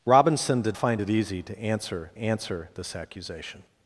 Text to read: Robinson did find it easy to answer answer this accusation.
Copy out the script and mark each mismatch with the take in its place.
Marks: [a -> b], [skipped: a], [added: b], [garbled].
Robinson did find it easy to answer answer this accusation.